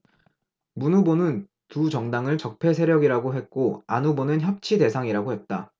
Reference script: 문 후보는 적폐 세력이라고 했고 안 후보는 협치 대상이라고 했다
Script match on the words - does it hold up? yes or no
no